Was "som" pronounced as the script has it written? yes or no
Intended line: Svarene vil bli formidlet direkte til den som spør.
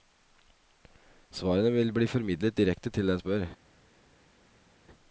no